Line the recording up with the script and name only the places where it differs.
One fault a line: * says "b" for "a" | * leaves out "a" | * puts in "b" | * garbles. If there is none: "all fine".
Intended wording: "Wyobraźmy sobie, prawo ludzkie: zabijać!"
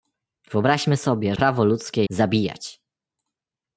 all fine